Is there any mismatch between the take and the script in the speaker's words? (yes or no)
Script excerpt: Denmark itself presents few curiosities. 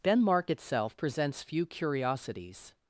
no